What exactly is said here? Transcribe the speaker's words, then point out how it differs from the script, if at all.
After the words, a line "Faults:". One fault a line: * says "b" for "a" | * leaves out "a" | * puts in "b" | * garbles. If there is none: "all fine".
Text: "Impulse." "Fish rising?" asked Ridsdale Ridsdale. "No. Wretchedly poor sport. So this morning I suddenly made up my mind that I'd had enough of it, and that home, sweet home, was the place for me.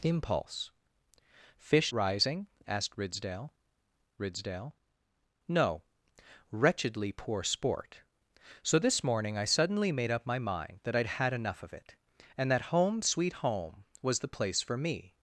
"Impulse." "Fish rising?" asked Ridsdale Ridsdale. "No. Wretchedly poor sport. So this morning I suddenly made up my mind that I'd had enough of it, and that home, sweet home, was the place for me.
Faults:
all fine